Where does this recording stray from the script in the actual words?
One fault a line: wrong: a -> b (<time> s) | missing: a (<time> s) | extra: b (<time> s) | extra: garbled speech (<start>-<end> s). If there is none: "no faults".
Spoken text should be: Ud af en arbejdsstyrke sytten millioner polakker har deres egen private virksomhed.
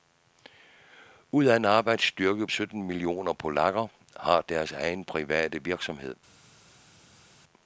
no faults